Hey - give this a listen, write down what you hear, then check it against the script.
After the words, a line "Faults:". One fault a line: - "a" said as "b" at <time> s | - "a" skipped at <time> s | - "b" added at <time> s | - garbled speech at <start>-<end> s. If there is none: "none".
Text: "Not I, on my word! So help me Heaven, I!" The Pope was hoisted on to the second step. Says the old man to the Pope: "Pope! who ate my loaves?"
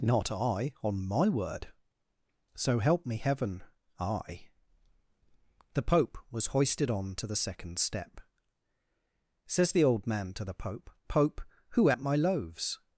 "Not I, on my word! So help me Heaven, I!" The Pope was hoisted on to the second step. Says the old man to the Pope: "Pope! who ate my loaves?"
Faults:
none